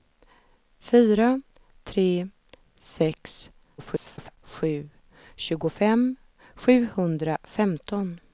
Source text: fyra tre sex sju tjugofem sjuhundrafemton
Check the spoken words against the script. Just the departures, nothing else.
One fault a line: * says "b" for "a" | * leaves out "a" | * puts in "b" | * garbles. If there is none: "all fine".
* garbles